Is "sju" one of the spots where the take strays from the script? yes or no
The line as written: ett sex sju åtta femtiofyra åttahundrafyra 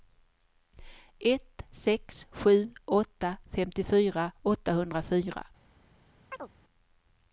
no